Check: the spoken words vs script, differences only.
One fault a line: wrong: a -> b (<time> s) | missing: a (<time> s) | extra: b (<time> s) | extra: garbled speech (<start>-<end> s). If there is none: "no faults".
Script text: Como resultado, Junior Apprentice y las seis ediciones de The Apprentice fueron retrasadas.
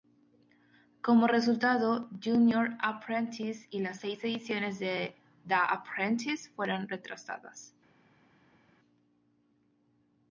no faults